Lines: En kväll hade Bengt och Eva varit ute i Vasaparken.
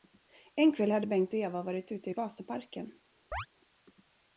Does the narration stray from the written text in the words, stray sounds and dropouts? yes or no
yes